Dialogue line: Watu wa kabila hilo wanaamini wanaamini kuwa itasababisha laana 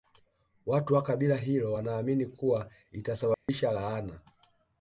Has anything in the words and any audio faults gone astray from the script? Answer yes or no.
yes